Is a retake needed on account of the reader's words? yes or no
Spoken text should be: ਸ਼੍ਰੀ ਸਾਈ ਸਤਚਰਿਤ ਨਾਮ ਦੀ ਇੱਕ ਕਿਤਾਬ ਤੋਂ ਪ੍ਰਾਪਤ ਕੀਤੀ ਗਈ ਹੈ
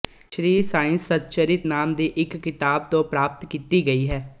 no